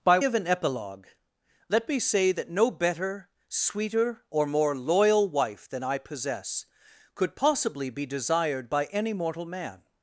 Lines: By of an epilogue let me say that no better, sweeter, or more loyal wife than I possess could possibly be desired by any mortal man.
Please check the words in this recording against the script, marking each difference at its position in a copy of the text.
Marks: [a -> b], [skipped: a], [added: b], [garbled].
By of an epilogue let me say that no better, sweeter, or more loyal wife than I possess could possibly be desired by any mortal man.